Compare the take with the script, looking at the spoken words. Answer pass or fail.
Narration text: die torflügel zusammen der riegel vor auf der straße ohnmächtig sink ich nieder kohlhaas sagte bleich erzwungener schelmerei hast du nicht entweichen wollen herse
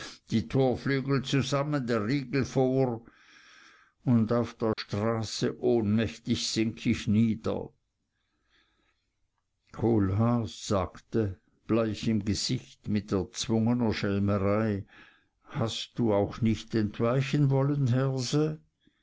fail